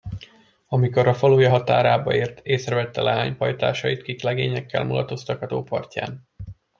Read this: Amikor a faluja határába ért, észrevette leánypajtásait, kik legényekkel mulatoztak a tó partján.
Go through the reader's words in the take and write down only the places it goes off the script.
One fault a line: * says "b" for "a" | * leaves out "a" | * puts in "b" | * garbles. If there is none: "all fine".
all fine